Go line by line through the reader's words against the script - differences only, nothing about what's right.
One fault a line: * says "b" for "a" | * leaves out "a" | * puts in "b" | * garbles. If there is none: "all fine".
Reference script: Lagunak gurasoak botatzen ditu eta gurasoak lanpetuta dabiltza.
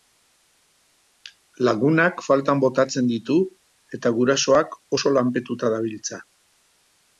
* says "faltan" for "gurasoak"
* puts in "oso"